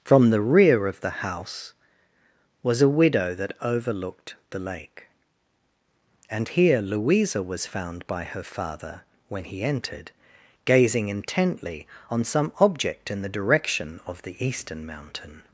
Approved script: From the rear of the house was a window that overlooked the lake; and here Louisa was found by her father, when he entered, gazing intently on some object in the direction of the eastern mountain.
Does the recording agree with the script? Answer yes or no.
no